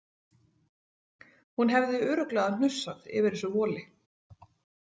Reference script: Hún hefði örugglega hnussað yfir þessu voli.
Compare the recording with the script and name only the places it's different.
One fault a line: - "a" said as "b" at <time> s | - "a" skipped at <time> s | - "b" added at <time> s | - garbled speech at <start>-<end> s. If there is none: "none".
none